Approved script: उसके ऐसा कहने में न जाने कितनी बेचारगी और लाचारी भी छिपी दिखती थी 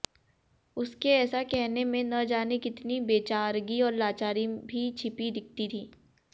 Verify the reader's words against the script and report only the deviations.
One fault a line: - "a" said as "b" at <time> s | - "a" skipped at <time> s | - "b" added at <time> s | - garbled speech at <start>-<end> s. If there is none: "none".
none